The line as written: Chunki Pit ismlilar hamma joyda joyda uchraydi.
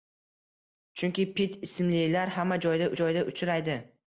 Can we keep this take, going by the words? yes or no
yes